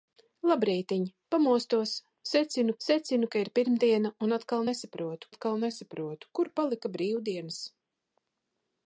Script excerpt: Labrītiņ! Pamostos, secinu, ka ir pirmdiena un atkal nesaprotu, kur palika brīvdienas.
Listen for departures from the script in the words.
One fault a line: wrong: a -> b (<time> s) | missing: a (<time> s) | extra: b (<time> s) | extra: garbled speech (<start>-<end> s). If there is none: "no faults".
extra: secinu (2.8 s)
extra: atkal nesaprotu (5.3 s)